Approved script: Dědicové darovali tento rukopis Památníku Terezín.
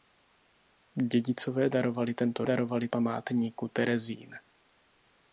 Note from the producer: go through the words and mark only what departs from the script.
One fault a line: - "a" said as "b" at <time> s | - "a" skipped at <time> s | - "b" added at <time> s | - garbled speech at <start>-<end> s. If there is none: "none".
- "rukopis" said as "darovali" at 2.4 s